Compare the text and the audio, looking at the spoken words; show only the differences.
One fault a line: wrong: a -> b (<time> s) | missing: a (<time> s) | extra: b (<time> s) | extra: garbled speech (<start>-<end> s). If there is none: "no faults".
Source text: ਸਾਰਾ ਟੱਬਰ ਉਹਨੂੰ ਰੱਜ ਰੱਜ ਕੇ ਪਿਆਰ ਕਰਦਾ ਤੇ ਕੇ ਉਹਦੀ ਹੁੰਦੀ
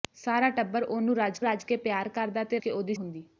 no faults